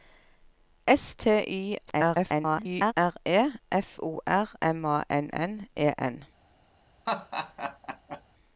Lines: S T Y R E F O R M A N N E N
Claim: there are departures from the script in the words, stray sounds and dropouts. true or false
true